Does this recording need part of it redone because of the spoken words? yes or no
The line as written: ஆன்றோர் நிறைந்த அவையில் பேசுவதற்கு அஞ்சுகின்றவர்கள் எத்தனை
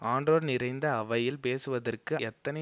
yes